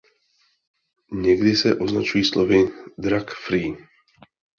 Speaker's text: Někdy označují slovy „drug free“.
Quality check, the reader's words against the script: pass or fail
fail